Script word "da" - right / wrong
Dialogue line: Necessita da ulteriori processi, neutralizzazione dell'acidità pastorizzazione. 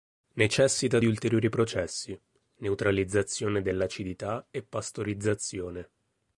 wrong